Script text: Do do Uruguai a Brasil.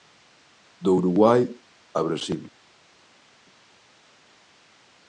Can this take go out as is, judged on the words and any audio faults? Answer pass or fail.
fail